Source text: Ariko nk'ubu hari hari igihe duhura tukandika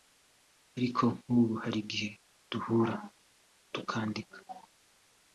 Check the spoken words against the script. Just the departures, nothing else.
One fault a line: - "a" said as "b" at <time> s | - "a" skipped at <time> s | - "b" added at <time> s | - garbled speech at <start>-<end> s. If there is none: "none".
- "hari" skipped at 1.8 s